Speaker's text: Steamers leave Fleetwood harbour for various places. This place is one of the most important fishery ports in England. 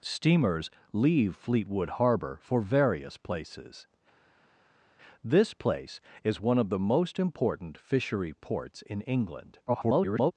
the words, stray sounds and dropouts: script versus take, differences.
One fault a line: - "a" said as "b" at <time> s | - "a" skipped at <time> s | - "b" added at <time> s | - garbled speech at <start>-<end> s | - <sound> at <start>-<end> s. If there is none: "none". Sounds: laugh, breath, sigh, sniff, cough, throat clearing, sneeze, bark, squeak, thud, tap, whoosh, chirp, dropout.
- garbled speech at 9.7-10.3 s